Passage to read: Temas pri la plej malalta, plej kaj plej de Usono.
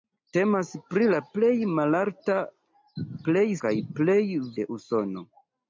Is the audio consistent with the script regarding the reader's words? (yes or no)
yes